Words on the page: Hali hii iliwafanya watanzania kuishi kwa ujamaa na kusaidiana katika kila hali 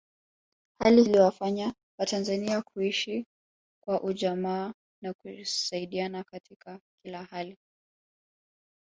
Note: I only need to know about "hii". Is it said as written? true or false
false